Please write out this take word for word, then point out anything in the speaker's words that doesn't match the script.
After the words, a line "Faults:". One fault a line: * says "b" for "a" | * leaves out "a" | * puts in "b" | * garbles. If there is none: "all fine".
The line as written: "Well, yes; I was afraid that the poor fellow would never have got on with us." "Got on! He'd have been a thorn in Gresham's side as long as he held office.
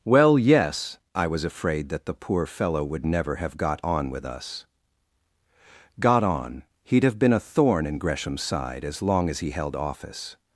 "Well, yes; I was afraid that the poor fellow would never have got on with us." "Got on! He'd have been a thorn in Gresham's side as long as he held office.
Faults:
all fine